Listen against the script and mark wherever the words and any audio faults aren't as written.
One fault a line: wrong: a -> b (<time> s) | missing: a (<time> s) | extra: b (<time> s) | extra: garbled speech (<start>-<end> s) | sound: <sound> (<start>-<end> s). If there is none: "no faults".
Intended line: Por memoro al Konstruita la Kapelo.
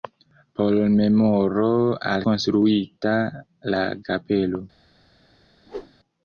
sound: whoosh (5.7-5.9 s)